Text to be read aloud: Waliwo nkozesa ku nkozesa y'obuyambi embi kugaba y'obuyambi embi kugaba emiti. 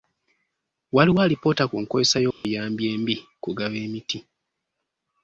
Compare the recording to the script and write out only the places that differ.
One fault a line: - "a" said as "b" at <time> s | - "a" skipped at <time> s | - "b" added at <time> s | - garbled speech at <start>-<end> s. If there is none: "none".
- "nkozesa" said as "alipoota" at 1.2 s
- "y'obuyambi embi kugaba" skipped at 3.8 s